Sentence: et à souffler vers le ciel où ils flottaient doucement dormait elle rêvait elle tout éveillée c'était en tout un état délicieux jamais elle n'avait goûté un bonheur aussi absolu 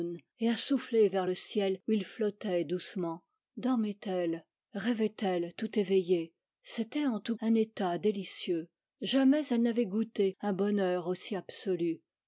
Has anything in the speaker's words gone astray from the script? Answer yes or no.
no